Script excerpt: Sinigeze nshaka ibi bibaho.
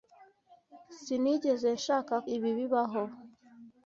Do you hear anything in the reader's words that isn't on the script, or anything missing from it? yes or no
no